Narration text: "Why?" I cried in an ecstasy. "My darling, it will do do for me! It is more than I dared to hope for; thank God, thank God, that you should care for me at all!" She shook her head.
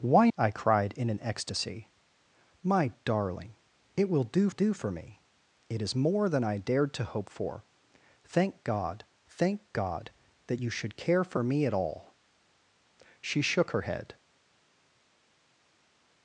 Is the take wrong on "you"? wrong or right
right